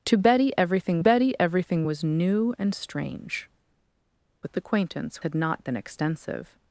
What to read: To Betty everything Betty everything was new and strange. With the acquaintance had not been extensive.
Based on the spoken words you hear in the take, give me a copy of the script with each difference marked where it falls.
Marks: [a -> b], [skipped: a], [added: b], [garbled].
To Betty everything Betty everything was new and strange. With the acquaintance had not been extensive.